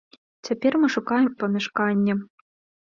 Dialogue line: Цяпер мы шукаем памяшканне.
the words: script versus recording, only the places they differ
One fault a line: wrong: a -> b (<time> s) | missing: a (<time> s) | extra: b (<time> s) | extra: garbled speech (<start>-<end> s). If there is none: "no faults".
no faults